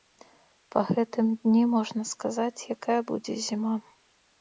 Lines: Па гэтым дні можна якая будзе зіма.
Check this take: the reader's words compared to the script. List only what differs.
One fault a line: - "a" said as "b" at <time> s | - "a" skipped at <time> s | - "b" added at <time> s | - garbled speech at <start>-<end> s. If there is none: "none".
- "сказаць" added at 2.1 s